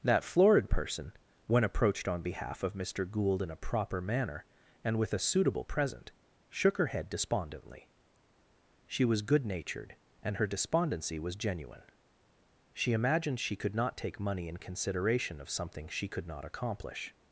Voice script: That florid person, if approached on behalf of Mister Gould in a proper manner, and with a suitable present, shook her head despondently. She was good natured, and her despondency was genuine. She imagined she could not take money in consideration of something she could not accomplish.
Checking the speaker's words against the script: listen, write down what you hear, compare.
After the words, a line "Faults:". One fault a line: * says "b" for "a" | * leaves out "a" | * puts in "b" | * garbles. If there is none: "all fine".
That florid person, when approached on behalf of Mister Gould in a proper manner, and with a suitable present, shook her head despondently. She was good natured, and her despondency was genuine. She imagined she could not take money in consideration of something she could not accomplish.
Faults:
* says "when" for "if"